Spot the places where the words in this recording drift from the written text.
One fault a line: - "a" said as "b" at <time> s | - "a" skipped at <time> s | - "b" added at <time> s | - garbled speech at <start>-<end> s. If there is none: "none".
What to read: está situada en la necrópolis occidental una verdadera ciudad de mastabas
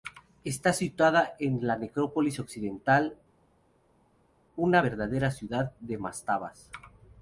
none